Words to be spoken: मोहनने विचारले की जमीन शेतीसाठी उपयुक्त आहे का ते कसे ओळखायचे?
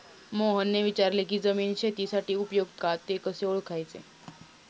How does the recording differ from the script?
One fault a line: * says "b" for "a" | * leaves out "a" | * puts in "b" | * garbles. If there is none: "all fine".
* leaves out "आहे"